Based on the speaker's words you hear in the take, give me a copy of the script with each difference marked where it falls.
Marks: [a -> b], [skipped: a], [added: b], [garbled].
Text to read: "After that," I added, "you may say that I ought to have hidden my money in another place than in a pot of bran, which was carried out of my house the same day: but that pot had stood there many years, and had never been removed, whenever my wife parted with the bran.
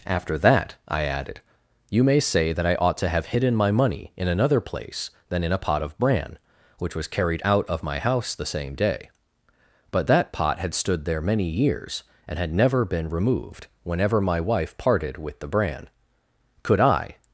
"After that," I added, "you may say that I ought to have hidden my money in another place than in a pot of bran, which was carried out of my house the same day: but that pot had stood there many years, and had never been removed, whenever my wife parted with the bran. [added: Could I]